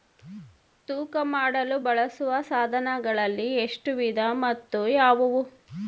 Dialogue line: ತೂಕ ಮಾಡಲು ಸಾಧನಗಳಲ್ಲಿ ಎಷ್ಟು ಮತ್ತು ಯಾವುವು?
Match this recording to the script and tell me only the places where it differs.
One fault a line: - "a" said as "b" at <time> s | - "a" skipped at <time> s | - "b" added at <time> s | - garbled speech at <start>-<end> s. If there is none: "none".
- "ಬಳಸುವ" added at 1.8 s
- "ವಿಧ" added at 4.0 s